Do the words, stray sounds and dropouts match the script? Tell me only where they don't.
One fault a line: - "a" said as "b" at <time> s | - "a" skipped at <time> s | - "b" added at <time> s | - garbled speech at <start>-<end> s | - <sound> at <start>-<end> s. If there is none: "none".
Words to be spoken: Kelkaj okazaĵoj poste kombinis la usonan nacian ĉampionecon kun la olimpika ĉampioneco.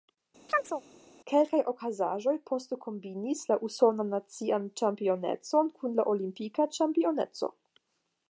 - chirp at 0.5-0.8 s